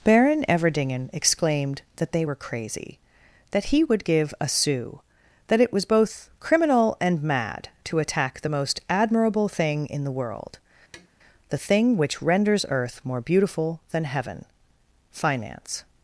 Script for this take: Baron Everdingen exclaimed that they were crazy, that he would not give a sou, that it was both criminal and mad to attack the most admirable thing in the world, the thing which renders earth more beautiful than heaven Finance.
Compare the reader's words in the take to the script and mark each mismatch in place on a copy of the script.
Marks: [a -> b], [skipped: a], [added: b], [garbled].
Baron Everdingen exclaimed that they were crazy, that he would [skipped: not] give a sou, that it was both criminal and mad to attack the most admirable thing in the world, the thing which renders earth more beautiful than heaven Finance.